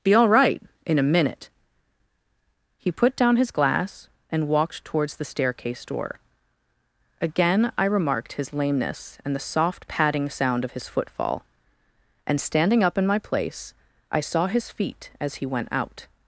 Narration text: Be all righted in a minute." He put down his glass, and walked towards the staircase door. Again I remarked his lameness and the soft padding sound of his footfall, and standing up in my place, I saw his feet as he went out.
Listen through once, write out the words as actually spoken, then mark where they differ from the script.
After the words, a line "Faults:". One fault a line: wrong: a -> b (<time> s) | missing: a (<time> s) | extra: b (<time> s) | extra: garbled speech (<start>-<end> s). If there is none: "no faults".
Be all right in a minute." He put down his glass, and walked towards the staircase door. Again I remarked his lameness and the soft padding sound of his footfall, and standing up in my place, I saw his feet as he went out.
Faults:
wrong: righted -> right (0.3 s)